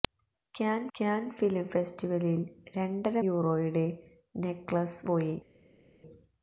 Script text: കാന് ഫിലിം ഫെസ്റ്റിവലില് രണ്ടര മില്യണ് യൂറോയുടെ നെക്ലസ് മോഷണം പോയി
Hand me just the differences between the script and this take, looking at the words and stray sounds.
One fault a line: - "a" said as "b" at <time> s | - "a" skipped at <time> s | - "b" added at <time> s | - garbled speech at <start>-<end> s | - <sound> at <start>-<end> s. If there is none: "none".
- "കാന്" added at 1.0 s
- "മില്യണ്" skipped at 3.2 s
- "മോഷണം" skipped at 5.1 s